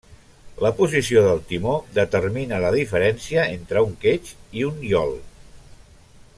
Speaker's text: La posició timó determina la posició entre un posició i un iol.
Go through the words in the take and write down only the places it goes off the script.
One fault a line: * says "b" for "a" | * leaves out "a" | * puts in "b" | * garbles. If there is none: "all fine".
* puts in "del"
* says "diferència" for "posició"
* says "quetx" for "posició"